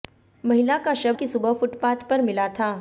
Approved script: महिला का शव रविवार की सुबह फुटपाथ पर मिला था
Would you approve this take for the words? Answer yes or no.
no